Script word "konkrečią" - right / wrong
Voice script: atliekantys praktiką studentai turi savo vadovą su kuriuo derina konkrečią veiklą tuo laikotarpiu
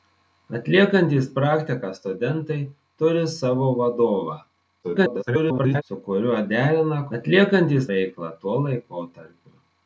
wrong